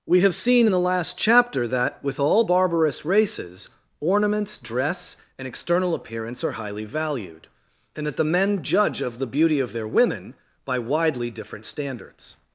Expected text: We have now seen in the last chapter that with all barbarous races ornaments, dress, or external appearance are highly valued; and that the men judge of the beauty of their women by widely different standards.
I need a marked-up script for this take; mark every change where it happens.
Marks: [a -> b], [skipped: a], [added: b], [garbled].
We have [skipped: now] seen in the last chapter that with all barbarous races ornaments, dress, [or -> and] external appearance are highly valued; and that the men judge of the beauty of their women by widely different standards.